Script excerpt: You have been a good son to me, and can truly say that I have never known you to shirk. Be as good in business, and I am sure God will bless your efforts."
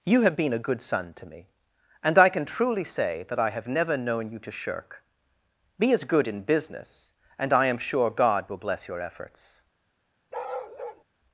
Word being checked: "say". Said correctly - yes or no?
yes